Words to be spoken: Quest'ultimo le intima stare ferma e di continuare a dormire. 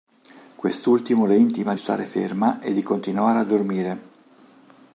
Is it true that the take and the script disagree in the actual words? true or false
false